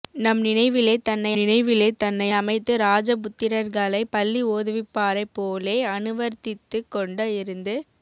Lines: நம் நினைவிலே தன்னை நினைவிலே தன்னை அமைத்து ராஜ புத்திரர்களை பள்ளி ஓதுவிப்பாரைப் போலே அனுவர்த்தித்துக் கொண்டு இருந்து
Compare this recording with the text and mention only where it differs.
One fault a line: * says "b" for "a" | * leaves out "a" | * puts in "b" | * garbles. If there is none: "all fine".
all fine